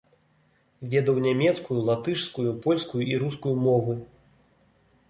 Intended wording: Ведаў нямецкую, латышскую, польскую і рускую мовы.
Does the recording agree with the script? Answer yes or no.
yes